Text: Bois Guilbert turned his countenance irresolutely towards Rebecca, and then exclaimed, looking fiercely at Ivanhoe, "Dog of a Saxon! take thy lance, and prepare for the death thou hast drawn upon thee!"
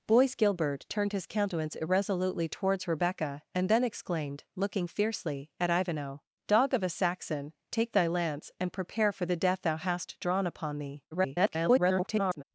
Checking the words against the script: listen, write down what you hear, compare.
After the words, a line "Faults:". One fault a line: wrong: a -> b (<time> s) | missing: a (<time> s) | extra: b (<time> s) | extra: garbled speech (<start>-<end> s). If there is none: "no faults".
Bois Guilbert turned his countenance irresolutely towards Rebecca, and then exclaimed, looking fiercely at Ivanhoe, "Dog of a Saxon! take thy lance, and prepare for the death thou hast drawn upon thee!" [garbled]
Faults:
extra: garbled speech (11.1-12.4 s)